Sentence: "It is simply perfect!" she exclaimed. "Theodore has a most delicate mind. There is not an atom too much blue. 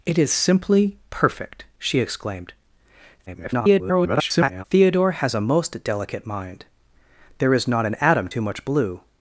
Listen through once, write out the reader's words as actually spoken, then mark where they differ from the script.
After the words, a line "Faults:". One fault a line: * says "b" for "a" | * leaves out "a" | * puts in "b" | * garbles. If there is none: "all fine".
"It is simply perfect!" she exclaimed. [garbled] "Theodore has a most delicate mind. There is not an atom too much blue.
Faults:
* garbles